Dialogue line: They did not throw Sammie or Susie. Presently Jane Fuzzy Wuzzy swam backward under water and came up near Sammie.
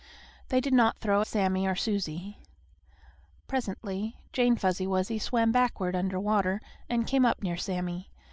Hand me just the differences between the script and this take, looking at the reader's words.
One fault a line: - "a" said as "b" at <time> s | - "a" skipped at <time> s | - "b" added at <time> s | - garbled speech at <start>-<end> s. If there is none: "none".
none